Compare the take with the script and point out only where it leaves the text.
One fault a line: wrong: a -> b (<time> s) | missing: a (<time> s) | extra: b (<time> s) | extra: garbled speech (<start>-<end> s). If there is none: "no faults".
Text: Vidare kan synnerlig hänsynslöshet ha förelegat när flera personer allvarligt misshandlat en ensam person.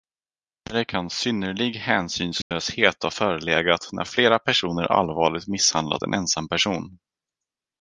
no faults